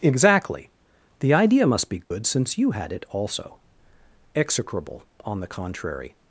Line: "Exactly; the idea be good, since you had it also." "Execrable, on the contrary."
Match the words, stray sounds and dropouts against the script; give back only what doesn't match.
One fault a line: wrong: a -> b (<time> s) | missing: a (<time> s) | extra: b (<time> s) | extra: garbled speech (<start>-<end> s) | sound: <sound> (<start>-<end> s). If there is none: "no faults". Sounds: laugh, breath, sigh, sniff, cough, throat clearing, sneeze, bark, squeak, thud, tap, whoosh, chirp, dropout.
extra: must (1.7 s)
sound: dropout (2.0-2.1 s)